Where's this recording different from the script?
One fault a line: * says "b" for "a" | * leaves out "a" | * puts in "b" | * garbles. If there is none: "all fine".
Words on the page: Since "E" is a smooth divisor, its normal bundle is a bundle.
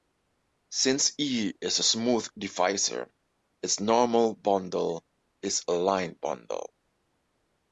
* puts in "line"